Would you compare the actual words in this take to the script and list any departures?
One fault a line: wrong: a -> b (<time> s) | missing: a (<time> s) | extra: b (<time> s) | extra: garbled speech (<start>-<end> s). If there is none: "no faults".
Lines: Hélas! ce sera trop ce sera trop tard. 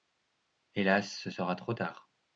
missing: ce sera trop (1.7 s)